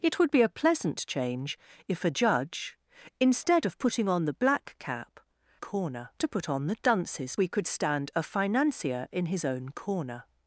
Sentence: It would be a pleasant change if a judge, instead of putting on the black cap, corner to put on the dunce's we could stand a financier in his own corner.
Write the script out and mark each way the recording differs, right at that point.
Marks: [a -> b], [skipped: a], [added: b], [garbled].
It would be a pleasant change if a judge, instead of putting on the black cap, corner to put on the dunce's we could stand a financier in his own corner.